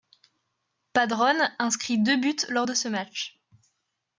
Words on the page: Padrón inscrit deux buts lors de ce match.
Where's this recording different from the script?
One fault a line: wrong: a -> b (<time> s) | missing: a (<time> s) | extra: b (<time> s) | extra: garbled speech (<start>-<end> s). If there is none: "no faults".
no faults